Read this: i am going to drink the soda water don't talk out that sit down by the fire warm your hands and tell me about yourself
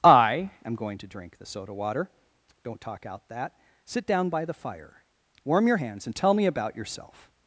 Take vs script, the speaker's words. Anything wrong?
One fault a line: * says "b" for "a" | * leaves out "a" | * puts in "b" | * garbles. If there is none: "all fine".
all fine